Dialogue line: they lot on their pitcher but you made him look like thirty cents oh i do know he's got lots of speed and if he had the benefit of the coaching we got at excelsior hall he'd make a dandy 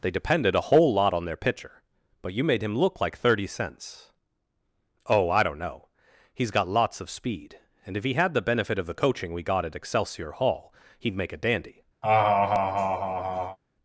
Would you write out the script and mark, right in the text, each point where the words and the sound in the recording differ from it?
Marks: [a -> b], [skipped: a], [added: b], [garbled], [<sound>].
they [added: depended a whole] lot on their pitcher but you made him look like thirty cents oh i [do -> don't] know he's got lots of speed and if he had the benefit of the coaching we got at excelsior hall he'd make a dandy [laugh]